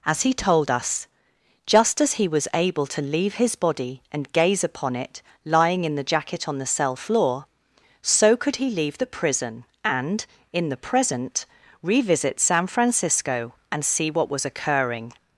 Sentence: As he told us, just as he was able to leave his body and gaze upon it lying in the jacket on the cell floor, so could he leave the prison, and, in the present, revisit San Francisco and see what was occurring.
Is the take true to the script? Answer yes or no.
yes